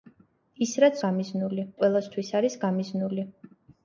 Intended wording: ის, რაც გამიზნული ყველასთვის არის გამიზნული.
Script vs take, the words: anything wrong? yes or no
no